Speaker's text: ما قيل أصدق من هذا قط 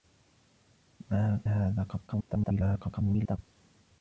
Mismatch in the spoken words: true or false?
true